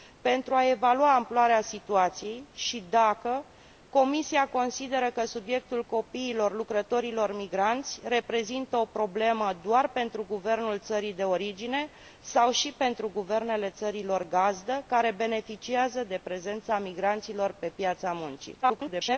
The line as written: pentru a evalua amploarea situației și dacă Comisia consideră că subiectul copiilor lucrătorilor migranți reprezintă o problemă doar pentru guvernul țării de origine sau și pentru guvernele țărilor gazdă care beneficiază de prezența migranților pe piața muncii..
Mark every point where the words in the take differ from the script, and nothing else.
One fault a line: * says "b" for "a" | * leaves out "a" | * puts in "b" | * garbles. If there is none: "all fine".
* garbles